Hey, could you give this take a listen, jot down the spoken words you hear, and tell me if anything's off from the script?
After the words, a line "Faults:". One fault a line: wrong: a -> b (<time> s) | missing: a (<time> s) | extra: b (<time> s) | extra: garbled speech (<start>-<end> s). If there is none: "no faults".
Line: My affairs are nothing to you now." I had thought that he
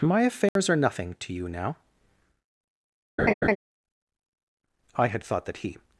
My affairs are nothing to you now." I had thought that he
Faults:
no faults